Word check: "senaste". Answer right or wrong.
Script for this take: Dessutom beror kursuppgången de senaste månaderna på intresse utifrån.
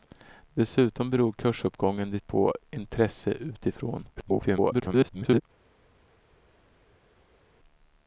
wrong